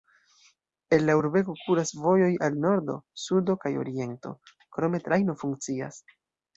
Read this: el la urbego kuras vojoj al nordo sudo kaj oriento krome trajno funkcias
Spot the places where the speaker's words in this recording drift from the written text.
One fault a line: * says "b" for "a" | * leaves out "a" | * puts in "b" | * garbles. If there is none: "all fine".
all fine